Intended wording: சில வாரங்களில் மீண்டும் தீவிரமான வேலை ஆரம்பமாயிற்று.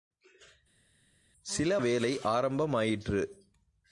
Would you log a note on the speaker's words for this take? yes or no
yes